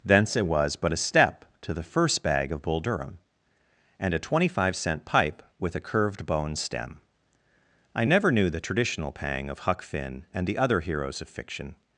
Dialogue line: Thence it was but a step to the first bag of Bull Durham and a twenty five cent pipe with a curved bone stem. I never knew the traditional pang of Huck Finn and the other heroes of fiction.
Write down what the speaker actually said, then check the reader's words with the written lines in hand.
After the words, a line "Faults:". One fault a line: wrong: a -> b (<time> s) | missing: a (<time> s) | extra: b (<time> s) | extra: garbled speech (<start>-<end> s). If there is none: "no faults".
Thence it was but a step to the first bag of Bull Durham and a twenty five cent pipe with a curved bone stem. I never knew the traditional pang of Huck Finn and the other heroes of fiction.
Faults:
no faults